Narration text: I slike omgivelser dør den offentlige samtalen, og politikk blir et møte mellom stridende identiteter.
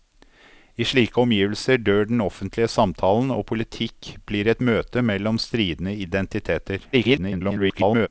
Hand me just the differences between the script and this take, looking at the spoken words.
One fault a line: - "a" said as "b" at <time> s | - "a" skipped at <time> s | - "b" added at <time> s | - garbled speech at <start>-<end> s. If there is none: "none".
- garbled speech at 6.9-8.1 s